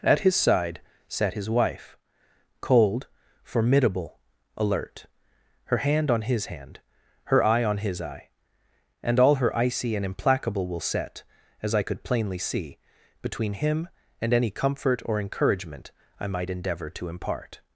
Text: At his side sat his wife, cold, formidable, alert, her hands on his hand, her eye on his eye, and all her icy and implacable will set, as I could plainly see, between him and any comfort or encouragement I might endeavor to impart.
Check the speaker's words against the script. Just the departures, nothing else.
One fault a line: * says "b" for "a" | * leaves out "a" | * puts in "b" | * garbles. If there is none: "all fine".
* says "hand" for "hands"